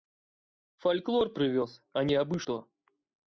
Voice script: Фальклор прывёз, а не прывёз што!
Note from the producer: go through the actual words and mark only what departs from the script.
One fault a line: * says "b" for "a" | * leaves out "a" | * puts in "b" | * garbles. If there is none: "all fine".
* says "абы" for "прывёз"